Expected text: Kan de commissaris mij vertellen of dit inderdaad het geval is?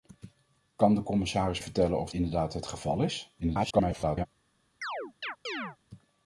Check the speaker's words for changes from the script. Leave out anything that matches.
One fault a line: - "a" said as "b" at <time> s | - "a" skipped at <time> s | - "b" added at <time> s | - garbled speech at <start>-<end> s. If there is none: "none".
- "mij" skipped at 1.6 s
- "dit" skipped at 2.1 s
- garbled speech at 3.4-4.3 s